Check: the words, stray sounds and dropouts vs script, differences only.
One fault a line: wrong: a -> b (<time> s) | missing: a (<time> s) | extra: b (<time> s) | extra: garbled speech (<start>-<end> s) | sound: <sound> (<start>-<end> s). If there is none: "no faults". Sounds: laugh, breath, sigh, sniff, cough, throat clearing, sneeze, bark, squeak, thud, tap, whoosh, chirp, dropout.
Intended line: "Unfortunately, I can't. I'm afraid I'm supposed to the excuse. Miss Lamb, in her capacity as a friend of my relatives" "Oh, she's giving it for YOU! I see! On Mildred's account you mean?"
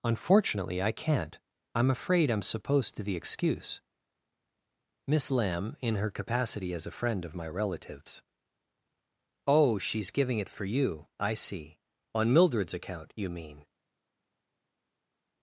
no faults